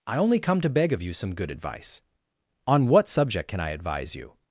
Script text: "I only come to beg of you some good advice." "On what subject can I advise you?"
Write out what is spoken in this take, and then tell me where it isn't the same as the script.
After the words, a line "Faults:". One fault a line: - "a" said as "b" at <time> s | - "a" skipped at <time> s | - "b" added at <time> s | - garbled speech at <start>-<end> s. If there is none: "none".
"I only come to beg of you some good advice." "On what subject can I advise you?"
Faults:
none